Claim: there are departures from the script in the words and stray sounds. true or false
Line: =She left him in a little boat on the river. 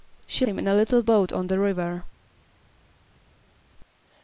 true